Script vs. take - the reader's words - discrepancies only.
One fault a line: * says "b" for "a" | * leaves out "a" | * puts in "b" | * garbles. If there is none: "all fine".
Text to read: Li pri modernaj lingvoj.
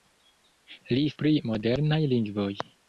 all fine